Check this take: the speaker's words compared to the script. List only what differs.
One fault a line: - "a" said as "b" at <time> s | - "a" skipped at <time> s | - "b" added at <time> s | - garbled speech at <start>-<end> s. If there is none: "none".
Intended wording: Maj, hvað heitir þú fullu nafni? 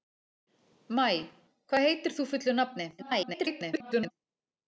- garbled speech at 3.0-4.1 s